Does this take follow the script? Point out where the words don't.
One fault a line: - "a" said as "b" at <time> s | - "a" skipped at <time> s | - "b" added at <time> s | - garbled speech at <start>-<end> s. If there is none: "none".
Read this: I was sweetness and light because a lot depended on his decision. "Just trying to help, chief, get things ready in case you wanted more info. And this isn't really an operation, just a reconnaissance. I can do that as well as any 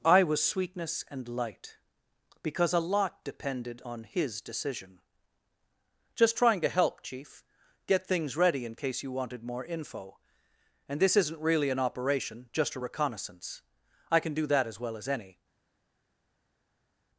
none